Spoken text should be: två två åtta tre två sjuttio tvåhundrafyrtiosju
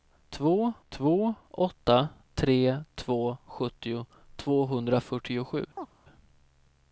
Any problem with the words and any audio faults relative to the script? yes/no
yes